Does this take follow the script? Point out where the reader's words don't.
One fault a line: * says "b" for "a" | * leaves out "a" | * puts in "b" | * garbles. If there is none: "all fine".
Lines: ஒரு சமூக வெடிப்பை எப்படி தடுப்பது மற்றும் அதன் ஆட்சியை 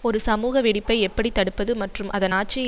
all fine